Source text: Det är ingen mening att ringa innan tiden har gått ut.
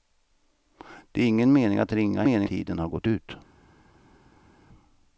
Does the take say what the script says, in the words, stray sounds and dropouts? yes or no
no